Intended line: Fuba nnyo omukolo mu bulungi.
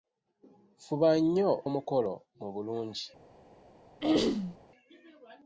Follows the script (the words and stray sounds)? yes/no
no